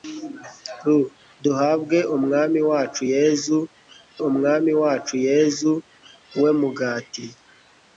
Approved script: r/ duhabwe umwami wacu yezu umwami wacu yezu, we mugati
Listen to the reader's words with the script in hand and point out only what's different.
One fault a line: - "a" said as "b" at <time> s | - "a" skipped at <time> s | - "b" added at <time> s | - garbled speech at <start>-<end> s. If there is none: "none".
none